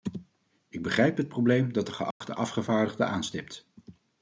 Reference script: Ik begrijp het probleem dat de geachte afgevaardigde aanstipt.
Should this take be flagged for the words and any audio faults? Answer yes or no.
yes